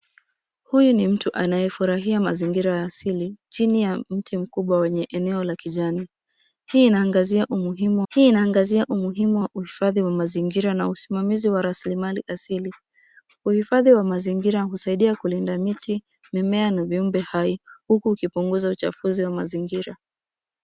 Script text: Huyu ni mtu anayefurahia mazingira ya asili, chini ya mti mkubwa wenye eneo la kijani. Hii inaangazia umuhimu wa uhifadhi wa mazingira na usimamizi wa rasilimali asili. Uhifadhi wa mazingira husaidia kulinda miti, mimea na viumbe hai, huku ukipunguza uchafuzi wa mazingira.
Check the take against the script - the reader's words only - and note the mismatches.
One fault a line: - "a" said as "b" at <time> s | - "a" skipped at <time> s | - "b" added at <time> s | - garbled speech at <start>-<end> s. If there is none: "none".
- "hii inaangazia umuhimu" added at 8.1 s